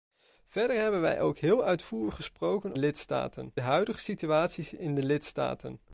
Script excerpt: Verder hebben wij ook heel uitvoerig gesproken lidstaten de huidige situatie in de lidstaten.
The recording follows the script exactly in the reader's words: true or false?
true